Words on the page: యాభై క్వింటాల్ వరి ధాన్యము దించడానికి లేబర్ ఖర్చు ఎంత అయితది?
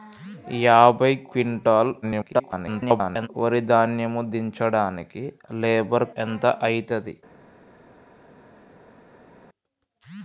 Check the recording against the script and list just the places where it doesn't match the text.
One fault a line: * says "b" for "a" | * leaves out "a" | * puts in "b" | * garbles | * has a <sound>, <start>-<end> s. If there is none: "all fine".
* garbles
* leaves out "ఖర్చు"